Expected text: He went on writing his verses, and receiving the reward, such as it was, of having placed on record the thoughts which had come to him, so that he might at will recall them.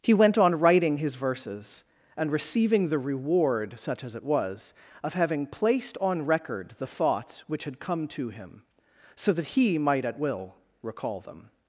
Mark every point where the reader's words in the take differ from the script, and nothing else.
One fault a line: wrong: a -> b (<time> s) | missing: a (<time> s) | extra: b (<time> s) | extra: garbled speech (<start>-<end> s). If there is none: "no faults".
no faults